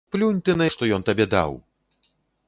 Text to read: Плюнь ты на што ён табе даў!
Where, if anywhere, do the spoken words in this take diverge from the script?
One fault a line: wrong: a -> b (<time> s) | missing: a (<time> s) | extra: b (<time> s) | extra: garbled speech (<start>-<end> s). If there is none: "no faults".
no faults